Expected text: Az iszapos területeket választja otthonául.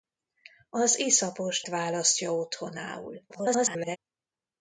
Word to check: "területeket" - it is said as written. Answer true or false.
false